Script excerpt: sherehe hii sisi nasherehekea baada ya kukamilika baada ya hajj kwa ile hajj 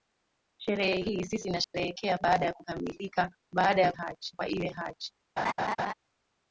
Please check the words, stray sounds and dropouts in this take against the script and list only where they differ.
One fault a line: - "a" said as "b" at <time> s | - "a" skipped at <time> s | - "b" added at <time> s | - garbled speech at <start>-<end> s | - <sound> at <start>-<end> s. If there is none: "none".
- dropout at 1.6-1.7 s
- laugh at 5.4-5.9 s